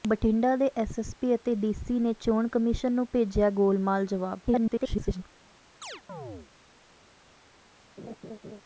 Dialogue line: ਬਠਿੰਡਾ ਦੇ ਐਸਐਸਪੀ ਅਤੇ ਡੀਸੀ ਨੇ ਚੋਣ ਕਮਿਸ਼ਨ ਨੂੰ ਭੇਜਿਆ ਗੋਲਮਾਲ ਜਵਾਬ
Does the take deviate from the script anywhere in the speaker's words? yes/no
yes